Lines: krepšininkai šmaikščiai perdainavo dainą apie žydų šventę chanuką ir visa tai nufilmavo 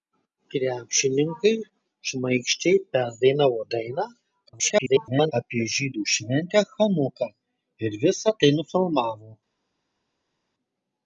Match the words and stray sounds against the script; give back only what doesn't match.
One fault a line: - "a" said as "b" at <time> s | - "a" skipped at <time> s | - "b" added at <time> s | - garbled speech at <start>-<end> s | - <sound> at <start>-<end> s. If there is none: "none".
- garbled speech at 4.5-5.3 s